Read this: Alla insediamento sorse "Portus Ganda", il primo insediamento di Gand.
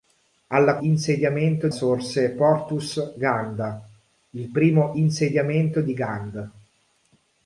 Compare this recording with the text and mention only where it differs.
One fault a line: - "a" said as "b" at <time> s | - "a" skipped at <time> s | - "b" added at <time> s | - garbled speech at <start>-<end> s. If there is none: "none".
none